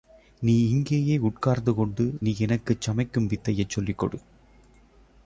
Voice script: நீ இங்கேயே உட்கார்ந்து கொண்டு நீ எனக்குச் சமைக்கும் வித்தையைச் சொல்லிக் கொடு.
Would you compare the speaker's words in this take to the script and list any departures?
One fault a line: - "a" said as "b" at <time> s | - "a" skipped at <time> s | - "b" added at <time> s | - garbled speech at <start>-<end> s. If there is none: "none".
none